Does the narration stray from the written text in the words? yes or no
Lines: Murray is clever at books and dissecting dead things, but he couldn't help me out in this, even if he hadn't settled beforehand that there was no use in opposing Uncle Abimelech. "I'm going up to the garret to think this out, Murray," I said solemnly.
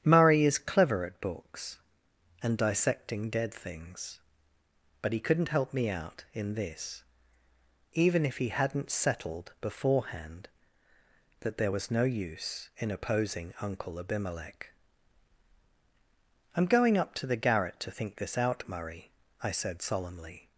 no